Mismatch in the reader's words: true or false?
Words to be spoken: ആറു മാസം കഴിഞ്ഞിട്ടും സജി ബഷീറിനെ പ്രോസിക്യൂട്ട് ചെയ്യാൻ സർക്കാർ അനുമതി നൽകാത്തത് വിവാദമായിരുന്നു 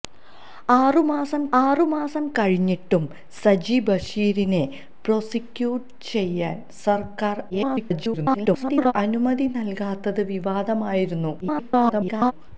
true